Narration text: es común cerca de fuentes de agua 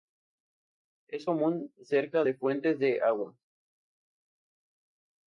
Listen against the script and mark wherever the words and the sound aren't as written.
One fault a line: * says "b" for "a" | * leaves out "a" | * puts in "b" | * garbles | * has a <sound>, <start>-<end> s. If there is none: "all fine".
all fine